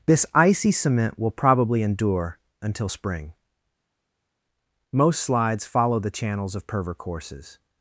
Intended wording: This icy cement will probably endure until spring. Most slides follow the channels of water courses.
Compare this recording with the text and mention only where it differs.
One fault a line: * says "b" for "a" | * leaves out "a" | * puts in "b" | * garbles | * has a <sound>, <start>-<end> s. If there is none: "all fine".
* says "perver" for "water"